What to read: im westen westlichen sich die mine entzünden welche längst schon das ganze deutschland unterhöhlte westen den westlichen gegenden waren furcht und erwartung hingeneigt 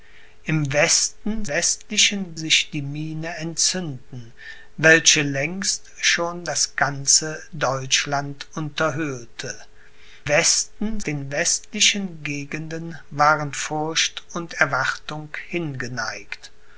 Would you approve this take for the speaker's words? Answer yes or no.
yes